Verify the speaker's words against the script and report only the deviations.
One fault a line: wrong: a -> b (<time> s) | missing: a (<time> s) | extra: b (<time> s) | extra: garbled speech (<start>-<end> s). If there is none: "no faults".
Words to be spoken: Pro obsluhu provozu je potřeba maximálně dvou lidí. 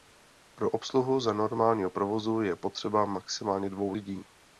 extra: za normálního (1.2 s)